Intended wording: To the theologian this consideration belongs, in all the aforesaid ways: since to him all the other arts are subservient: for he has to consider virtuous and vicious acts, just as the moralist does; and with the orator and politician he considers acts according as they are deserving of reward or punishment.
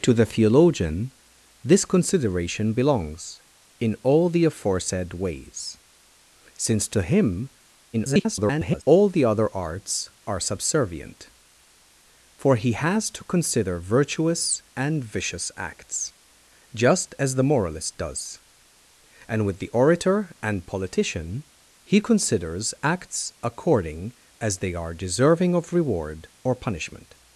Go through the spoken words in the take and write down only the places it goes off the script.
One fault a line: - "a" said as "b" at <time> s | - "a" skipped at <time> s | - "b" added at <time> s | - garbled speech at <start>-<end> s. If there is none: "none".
- garbled speech at 7.9-8.8 s